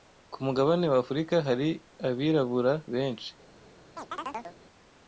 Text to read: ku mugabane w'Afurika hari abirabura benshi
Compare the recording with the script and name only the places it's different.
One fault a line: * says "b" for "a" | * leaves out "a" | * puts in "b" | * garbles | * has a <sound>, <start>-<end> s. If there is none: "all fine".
* has a chirp, 4.0-4.6 s